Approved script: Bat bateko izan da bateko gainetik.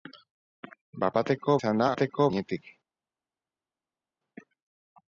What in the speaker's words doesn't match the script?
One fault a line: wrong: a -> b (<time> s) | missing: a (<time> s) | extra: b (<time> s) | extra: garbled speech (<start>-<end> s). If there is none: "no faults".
no faults